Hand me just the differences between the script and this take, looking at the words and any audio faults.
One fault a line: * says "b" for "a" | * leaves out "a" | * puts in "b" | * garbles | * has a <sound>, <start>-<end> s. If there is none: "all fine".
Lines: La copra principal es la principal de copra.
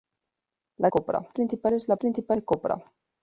all fine